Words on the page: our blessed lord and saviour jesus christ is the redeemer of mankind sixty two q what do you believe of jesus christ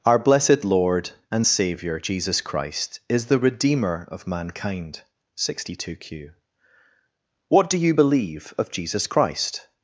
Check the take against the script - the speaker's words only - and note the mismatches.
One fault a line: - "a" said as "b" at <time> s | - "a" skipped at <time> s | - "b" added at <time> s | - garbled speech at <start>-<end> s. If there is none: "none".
none